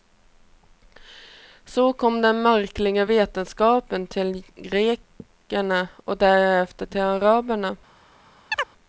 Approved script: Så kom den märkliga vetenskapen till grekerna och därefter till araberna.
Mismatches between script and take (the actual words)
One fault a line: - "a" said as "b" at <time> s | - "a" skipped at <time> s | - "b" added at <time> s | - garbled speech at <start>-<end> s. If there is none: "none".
none